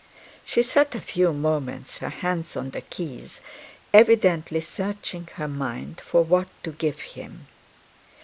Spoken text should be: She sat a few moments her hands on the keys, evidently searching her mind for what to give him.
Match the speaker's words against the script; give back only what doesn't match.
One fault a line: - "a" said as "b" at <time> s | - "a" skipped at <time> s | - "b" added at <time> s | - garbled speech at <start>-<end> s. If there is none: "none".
none